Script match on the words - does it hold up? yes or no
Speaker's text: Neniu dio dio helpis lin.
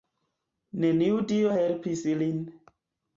no